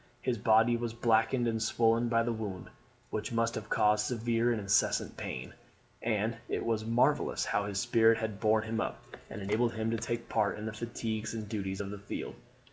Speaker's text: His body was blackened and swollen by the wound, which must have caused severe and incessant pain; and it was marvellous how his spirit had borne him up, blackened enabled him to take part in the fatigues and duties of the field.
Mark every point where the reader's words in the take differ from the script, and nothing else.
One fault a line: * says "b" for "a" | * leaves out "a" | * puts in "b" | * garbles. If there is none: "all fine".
* says "and" for "blackened"